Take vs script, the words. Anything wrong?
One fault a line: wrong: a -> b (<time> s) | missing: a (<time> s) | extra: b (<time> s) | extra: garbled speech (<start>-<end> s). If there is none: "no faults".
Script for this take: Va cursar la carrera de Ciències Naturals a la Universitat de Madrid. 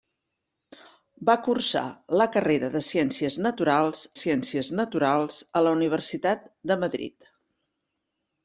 extra: Ciències Naturals (4.2 s)